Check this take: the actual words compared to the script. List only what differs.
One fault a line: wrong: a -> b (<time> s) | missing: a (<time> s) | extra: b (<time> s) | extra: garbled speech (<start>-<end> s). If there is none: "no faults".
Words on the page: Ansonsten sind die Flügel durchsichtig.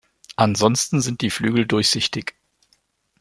no faults